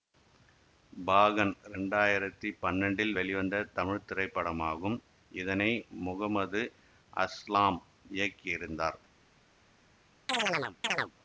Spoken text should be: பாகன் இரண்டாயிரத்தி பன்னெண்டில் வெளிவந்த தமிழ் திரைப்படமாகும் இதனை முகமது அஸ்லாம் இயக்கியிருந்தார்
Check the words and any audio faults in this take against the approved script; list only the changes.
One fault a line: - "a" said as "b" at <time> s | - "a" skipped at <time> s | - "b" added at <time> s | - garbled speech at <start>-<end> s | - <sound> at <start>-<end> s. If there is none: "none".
- chirp at 10.3-11.1 s